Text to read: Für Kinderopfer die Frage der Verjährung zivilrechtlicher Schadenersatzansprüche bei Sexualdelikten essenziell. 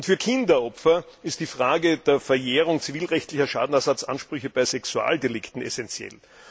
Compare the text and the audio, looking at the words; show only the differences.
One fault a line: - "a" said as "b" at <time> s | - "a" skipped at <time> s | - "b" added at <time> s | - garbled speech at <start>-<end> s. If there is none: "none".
- "ist" added at 1.2 s